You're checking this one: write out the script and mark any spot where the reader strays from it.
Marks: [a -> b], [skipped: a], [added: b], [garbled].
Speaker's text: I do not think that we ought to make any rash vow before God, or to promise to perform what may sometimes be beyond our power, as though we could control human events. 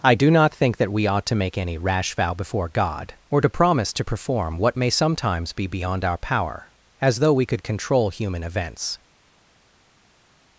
I do not think that we ought to make any rash vow before God, or to promise to perform what may sometimes be beyond our power, as though we could control human events.